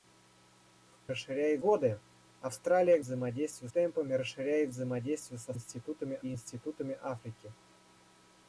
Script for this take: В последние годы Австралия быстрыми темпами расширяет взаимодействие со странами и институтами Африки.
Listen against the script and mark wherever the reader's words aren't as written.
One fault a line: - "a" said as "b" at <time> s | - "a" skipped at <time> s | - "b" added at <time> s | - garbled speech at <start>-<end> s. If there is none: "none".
- "последние" said as "расширяет" at 1.1 s
- "быстрыми" said as "взаимодействие" at 3.0 s
- "странами" said as "институтами" at 5.5 s